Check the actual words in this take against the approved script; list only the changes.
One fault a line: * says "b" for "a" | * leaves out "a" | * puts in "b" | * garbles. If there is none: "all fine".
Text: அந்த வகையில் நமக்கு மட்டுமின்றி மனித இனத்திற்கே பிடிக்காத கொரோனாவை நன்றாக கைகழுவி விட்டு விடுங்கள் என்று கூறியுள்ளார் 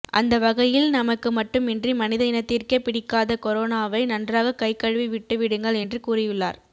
all fine